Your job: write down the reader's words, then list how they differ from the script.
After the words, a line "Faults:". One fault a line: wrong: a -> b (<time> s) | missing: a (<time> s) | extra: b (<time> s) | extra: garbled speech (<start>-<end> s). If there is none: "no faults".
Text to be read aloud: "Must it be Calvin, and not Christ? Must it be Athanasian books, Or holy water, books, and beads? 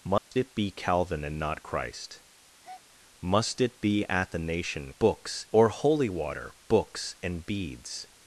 "Must it be Calvin, and not Christ? Must it be Athanasian books, Or holy water, books, and beads?
Faults:
no faults